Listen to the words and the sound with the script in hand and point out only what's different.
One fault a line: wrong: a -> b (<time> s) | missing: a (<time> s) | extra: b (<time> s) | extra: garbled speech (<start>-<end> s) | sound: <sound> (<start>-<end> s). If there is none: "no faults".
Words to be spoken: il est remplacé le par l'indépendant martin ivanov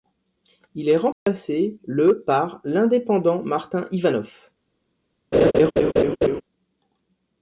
sound: dropout (1.1-1.3 s)
sound: laugh (5.3-6.4 s)